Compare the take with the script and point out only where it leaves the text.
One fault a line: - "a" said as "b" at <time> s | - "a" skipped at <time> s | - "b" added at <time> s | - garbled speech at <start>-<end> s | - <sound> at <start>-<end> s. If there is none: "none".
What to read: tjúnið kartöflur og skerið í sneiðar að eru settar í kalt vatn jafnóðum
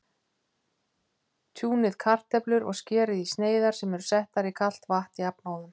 - "að" said as "sem" at 3.8 s